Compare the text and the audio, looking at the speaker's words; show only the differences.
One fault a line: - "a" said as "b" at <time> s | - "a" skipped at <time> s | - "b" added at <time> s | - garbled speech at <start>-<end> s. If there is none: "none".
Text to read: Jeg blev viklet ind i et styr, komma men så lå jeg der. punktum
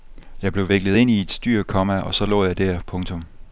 - "men" said as "og" at 2.0 s